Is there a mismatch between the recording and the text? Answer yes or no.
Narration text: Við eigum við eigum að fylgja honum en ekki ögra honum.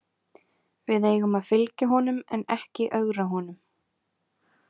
yes